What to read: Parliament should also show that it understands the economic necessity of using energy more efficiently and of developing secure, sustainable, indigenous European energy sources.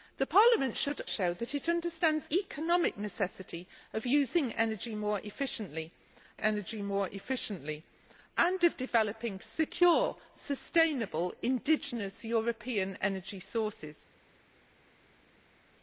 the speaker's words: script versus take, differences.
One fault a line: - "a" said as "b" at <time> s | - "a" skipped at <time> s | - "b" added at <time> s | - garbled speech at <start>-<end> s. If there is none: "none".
- "also" skipped at 1.0 s
- "the" skipped at 2.3 s
- "energy more efficiently" added at 6.4 s